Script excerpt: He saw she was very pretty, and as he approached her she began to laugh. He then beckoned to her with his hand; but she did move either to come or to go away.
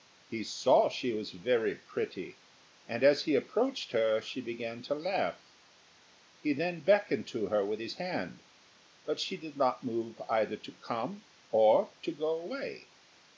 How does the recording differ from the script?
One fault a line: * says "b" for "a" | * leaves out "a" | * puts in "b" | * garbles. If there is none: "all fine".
* puts in "not"